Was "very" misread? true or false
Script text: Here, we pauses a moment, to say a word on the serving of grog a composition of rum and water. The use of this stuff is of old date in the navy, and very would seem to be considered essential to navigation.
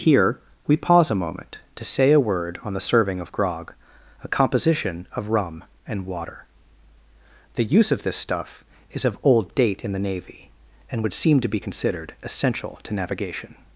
true